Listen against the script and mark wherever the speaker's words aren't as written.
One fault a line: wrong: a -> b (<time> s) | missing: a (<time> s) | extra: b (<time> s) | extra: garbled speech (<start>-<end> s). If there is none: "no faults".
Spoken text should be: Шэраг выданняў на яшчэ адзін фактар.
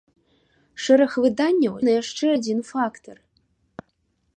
no faults